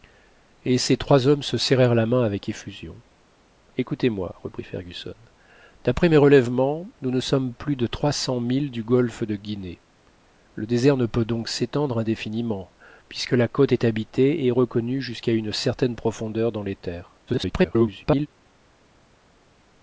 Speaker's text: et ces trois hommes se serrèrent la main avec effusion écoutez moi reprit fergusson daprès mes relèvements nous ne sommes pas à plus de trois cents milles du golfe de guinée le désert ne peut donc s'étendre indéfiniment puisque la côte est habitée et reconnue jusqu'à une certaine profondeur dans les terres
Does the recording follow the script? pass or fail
fail